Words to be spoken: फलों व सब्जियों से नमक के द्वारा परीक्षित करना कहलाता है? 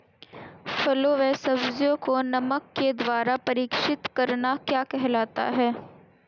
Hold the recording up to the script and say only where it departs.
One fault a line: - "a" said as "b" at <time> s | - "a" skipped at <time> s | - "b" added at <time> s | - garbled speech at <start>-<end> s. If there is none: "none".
- "से" said as "को" at 2.0 s
- "क्या" added at 4.7 s